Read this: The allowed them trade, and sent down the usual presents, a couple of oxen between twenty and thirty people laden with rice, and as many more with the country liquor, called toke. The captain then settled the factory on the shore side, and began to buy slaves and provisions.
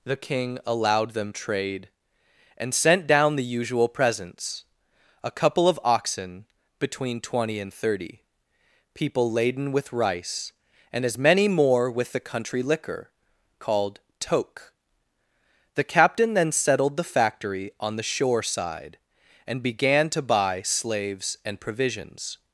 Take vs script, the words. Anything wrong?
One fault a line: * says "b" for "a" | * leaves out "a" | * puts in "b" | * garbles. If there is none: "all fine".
* puts in "king"